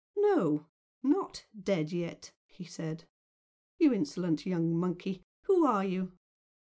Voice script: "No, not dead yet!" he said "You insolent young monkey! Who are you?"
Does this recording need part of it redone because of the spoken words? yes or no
no